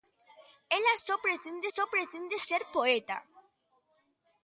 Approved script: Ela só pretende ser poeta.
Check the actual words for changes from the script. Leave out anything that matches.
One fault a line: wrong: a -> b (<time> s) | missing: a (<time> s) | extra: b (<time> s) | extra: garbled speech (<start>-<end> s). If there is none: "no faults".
extra: só pretende (1.7 s)